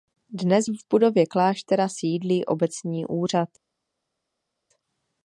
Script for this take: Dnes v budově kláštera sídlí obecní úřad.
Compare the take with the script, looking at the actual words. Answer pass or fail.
pass